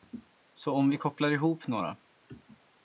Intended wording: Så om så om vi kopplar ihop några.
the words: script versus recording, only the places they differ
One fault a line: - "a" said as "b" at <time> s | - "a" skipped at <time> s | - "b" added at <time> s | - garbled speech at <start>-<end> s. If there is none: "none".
- "så om" skipped at 0.9 s